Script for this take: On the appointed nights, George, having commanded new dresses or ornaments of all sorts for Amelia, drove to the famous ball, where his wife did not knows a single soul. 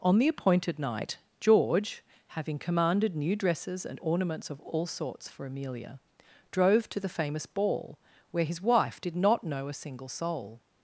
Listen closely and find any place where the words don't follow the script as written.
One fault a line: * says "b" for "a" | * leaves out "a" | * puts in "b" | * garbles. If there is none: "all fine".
* says "night" for "nights"
* says "and" for "or"
* says "know" for "knows"